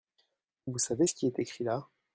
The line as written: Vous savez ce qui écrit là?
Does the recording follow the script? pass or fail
fail